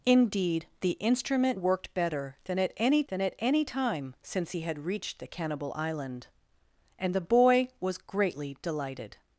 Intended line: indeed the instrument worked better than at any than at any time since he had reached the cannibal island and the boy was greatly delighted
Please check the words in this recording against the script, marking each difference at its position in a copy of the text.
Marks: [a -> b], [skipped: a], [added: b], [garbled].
indeed the instrument worked better than at any than at any time since he had reached the cannibal island and the boy was greatly delighted